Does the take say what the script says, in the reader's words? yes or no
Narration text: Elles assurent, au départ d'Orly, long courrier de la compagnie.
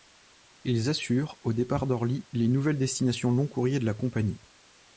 no